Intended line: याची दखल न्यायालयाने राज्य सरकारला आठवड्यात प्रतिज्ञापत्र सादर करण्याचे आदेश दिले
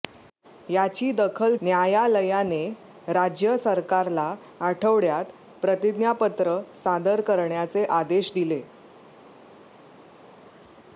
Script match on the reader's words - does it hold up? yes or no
yes